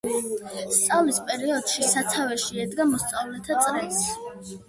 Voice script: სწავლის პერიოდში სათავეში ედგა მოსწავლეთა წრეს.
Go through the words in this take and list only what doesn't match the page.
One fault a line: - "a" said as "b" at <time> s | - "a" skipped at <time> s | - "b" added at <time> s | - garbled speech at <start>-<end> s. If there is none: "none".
none